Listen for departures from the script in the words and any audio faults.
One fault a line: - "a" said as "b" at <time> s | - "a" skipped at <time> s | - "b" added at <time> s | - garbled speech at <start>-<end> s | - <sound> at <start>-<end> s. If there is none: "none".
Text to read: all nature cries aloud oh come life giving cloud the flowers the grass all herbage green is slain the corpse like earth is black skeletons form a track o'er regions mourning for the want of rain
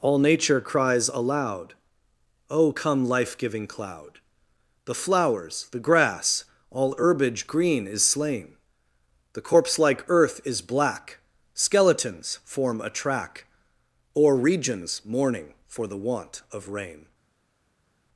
none